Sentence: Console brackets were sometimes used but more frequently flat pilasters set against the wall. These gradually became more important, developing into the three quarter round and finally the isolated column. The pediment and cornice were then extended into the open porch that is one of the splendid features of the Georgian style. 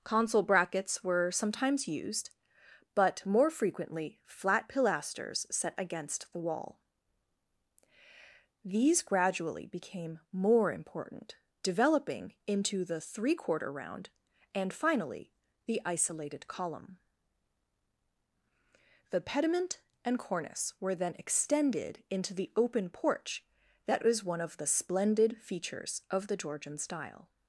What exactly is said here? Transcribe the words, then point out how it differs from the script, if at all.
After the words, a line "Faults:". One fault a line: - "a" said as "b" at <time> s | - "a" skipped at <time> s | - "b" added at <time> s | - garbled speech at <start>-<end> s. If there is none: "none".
Console brackets were sometimes used but more frequently flat pilasters set against the wall. These gradually became more important, developing into the three quarter round and finally the isolated column. The pediment and cornice were then extended into the open porch that was one of the splendid features of the Georgian style.
Faults:
- "is" said as "was" at 24.0 s